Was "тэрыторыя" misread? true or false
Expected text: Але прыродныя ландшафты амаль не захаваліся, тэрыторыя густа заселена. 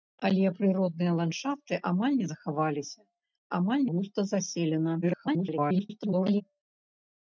true